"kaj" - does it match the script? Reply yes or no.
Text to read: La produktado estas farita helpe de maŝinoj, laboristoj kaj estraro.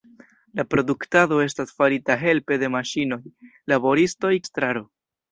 no